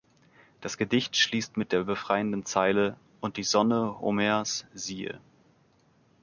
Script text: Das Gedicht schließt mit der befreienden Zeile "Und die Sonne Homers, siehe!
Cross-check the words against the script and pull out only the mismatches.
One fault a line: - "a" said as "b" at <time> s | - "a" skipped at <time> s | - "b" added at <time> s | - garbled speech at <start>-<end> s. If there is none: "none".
none